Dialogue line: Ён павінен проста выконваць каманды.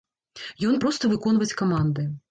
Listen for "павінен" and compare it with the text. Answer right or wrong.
wrong